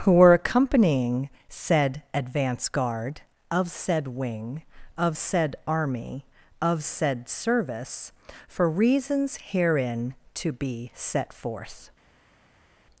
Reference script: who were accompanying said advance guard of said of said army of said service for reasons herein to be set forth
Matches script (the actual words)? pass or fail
fail